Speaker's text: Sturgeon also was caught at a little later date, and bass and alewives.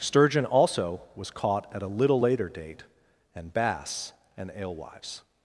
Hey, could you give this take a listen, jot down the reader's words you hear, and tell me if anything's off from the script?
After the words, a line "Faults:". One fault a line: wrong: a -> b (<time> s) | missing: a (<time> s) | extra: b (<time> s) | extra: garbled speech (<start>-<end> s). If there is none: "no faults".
Sturgeon also was caught at a little later date, and bass and alewives.
Faults:
no faults